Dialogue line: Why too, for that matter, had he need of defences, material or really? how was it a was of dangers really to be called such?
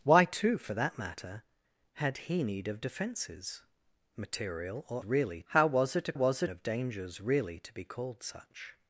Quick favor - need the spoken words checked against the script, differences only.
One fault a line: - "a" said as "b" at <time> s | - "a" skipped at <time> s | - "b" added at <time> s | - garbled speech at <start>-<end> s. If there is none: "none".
none